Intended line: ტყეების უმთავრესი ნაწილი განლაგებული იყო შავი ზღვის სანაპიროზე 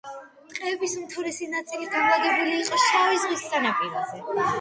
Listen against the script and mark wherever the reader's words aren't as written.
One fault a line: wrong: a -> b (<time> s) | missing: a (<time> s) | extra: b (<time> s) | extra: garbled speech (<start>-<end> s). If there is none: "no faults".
no faults